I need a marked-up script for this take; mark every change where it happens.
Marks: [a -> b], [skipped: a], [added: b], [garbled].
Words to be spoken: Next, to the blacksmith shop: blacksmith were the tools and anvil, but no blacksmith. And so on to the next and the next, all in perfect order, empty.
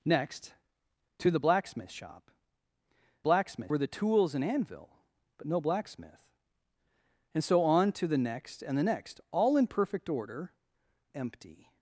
Next, to the blacksmith shop: blacksmith were the tools and anvil, but no blacksmith. And so on to the next and the next, all in perfect order, empty.